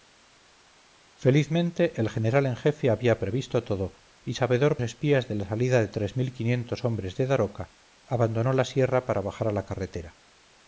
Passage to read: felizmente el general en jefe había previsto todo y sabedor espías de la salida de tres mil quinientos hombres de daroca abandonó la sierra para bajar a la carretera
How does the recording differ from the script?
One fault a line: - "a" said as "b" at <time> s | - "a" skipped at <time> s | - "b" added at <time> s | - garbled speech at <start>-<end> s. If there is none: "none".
none